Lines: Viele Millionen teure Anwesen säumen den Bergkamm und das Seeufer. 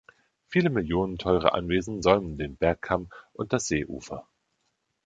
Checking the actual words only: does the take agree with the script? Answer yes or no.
yes